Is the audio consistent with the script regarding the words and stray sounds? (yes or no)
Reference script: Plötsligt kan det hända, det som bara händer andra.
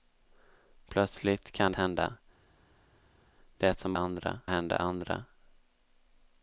no